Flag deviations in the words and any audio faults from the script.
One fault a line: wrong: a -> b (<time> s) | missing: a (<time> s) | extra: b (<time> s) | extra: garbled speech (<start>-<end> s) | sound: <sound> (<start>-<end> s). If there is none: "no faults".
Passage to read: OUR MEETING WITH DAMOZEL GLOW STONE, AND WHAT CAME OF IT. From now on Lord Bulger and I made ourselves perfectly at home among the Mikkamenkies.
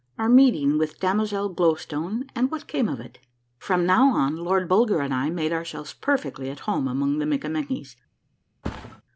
sound: thud (8.6-9.0 s)